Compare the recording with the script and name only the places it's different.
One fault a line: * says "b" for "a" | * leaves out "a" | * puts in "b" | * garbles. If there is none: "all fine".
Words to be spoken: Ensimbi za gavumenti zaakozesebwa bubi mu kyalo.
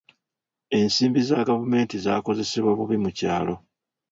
all fine